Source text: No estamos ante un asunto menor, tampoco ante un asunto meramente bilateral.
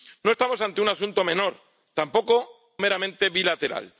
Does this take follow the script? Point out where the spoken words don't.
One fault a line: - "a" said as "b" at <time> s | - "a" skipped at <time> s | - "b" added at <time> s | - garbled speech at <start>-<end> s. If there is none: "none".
- "ante un asunto" skipped at 2.8 s